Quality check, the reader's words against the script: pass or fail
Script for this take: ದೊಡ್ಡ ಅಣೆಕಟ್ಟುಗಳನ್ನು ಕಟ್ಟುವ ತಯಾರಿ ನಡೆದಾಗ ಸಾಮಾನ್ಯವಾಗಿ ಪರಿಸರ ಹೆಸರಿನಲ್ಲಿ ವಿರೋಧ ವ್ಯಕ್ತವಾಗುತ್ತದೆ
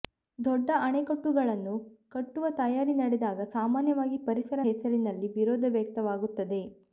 pass